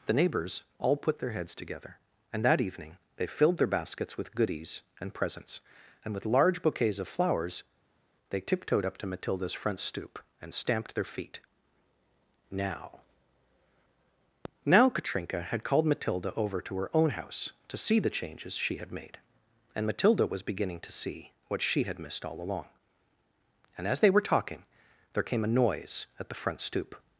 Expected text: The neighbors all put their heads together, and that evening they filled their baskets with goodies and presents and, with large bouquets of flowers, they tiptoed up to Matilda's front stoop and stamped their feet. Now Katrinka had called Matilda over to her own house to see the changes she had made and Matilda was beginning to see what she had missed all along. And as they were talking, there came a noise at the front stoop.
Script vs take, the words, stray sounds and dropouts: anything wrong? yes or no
yes